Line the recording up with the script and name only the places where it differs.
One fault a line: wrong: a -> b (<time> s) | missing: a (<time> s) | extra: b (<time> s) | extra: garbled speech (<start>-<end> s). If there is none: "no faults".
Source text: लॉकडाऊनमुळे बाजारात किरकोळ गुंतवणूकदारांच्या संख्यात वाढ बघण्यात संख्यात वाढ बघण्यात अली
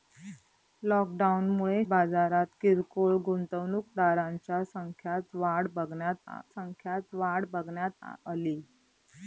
no faults